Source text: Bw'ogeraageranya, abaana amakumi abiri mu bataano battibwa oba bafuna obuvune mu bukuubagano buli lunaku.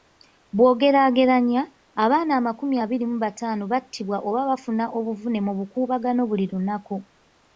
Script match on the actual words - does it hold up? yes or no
yes